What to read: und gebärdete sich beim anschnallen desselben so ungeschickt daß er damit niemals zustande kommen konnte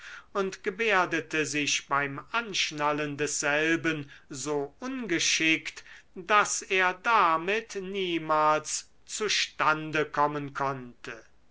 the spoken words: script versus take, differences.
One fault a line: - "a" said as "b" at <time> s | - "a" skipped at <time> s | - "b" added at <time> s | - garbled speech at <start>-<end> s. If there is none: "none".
none